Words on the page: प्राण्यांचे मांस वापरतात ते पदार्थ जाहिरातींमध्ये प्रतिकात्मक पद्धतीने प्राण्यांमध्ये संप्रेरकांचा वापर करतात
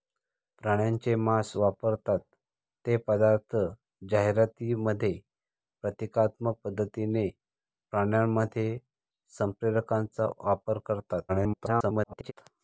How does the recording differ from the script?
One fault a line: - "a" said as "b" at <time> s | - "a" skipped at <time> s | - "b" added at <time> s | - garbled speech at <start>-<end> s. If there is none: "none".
- garbled speech at 11.3-12.3 s